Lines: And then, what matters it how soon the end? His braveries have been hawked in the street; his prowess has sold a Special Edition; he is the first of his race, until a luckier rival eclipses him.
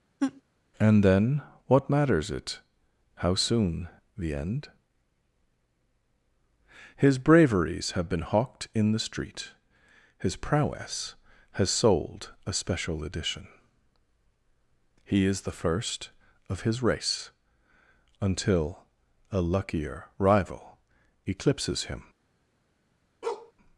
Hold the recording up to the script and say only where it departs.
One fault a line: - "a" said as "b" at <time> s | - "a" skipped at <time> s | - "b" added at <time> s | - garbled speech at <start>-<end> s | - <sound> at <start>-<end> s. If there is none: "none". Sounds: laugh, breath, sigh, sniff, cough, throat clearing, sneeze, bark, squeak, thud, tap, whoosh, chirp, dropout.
- laugh at 0.2-0.4 s
- bark at 23.2-23.5 s